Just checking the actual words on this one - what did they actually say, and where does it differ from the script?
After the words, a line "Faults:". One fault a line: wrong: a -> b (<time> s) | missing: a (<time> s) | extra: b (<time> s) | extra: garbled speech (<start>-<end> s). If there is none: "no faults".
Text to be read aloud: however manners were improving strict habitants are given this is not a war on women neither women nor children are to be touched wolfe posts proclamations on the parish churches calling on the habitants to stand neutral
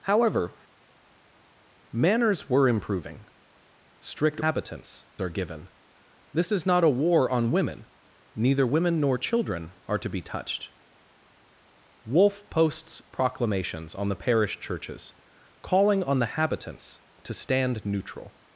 however manners were improving strict habitants are given this is not a war on women neither women nor children are to be touched wolfe posts proclamations on the parish churches calling on the habitants to stand neutral
Faults:
no faults